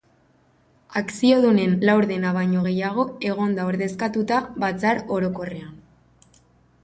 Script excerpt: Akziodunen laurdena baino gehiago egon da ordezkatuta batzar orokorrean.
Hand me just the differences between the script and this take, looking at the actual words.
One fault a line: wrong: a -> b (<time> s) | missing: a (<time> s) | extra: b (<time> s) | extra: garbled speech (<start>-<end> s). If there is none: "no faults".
no faults